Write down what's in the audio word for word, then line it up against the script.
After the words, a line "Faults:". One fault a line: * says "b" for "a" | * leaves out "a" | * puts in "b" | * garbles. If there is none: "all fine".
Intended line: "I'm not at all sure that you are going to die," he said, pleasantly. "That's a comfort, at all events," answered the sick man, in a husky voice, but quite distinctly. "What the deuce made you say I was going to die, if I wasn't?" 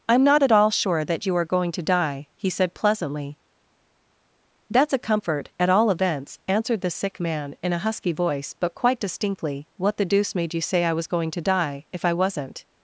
"I'm not at all sure that you are going to die," he said, pleasantly. "That's a comfort, at all events," answered the sick man, in a husky voice, but quite distinctly. "What the deuce made you say I was going to die, if I wasn't?"
Faults:
all fine